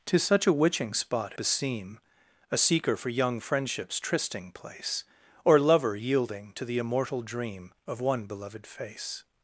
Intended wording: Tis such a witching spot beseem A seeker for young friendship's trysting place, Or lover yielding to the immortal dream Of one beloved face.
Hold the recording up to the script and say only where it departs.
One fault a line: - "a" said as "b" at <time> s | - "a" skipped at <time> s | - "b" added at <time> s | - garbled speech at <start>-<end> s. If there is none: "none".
none